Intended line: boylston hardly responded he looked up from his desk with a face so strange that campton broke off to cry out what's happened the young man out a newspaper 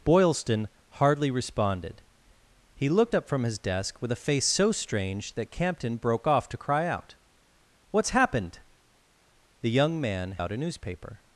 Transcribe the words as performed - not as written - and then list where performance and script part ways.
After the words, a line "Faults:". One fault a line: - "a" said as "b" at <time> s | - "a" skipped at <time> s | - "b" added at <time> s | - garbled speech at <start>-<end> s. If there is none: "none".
boylston hardly responded he looked up from his desk with a face so strange that campton broke off to cry out what's happened the young man out a newspaper
Faults:
none